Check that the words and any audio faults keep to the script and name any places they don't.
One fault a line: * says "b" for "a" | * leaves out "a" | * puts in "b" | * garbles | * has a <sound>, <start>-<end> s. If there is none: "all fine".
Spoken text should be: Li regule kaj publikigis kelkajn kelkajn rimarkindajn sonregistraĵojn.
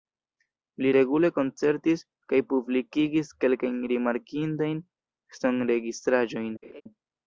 * puts in "koncertis"
* leaves out "kelkajn"
* has a laugh, 6.6-6.8 s